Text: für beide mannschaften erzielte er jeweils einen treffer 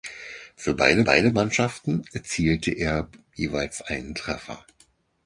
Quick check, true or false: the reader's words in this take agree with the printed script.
false